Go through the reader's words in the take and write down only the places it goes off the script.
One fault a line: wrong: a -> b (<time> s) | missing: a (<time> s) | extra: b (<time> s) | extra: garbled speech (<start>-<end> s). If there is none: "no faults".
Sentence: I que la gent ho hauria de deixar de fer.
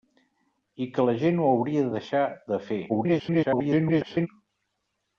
extra: garbled speech (2.9-4.3 s)